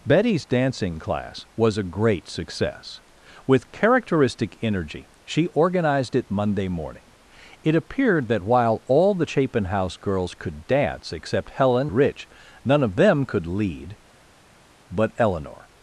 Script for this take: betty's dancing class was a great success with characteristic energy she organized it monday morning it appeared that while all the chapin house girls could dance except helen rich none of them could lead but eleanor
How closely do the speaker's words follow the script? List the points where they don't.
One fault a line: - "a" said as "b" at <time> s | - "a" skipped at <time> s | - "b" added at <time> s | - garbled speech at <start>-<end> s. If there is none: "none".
none